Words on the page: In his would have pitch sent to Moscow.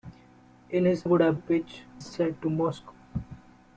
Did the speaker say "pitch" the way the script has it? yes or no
yes